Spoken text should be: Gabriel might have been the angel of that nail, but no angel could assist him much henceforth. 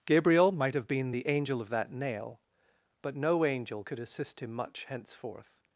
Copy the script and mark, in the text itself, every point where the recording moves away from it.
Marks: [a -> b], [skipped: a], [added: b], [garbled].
Gabriel might have been the angel of that nail, but no angel could assist him much henceforth.